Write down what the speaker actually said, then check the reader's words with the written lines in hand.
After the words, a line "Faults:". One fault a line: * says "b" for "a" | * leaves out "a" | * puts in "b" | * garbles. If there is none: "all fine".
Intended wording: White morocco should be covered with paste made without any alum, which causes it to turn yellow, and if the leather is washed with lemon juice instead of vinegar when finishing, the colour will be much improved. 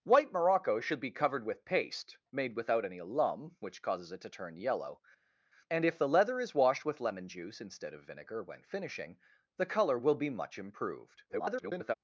White morocco should be covered with paste made without any alum, which causes it to turn yellow, and if the leather is washed with lemon juice instead of vinegar when finishing, the colour will be much improved. [garbled]
Faults:
* garbles